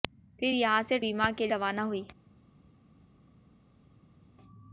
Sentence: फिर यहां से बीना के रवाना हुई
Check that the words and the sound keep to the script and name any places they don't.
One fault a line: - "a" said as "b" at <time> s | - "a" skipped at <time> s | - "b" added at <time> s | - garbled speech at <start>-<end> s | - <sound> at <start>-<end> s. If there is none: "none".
none